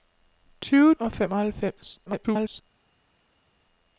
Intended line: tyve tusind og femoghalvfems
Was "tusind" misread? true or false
true